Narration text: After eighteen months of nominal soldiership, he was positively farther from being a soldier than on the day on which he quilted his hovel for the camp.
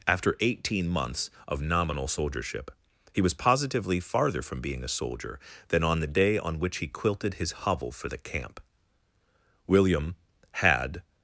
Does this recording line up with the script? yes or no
no